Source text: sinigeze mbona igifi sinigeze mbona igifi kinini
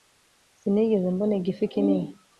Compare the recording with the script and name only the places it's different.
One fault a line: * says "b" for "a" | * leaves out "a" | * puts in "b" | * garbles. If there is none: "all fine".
* leaves out "sinigeze mbona igifi"